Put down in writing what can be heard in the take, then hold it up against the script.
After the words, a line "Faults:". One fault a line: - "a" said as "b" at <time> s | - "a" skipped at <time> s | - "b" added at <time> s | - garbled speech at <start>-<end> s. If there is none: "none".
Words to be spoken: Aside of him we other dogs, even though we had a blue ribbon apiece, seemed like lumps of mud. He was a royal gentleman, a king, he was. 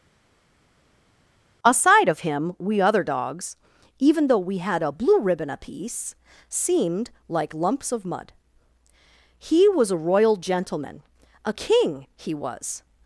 Aside of him we other dogs, even though we had a blue ribbon apiece, seemed like lumps of mud. He was a royal gentleman, a king, he was.
Faults:
none